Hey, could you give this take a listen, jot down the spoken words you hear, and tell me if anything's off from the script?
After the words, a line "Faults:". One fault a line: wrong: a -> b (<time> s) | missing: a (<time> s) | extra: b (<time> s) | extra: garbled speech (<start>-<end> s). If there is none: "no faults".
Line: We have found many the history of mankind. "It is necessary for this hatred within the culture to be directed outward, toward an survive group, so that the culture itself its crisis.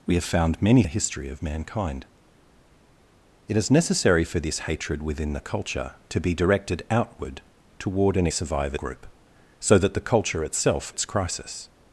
We have found many the history of mankind. "It is necessary for this hatred within the culture to be directed outward, toward an survive group, so that the culture itself its crisis.
Faults:
no faults